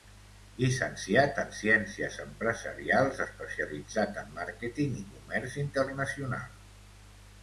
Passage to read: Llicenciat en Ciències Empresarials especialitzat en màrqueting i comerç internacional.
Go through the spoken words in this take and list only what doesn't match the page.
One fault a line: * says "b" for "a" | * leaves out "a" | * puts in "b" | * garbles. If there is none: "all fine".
all fine